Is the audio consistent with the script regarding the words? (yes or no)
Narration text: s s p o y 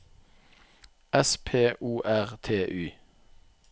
no